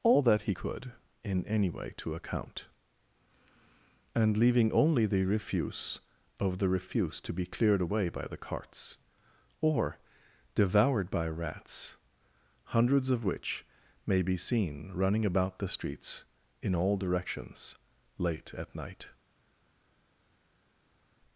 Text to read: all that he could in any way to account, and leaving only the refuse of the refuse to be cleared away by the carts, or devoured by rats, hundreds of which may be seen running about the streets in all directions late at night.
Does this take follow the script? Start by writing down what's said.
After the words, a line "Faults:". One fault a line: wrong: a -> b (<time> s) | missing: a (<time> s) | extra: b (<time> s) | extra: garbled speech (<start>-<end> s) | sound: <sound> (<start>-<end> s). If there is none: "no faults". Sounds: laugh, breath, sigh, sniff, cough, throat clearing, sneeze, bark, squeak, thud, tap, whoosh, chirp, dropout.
all that he could in any way to account, and leaving only the refuse of the refuse to be cleared away by the carts, or devoured by rats, hundreds of which may be seen running about the streets in all directions late at night.
Faults:
no faults